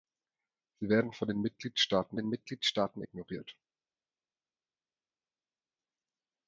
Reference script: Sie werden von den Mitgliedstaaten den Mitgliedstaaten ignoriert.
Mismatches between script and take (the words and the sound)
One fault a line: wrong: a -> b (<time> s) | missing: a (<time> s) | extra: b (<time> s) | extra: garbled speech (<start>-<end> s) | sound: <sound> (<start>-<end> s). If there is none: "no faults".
no faults